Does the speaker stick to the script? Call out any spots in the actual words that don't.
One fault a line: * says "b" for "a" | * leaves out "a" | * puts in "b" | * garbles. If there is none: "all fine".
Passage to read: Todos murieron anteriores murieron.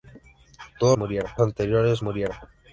all fine